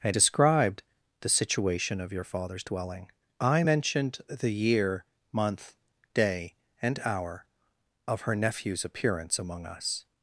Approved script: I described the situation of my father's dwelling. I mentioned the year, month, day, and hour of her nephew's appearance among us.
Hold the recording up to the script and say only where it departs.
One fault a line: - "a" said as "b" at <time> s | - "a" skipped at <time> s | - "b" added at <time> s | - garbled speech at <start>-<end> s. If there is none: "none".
- "my" said as "your" at 2.1 s